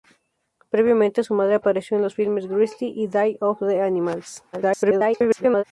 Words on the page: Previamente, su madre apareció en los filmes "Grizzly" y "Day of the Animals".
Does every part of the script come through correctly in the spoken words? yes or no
no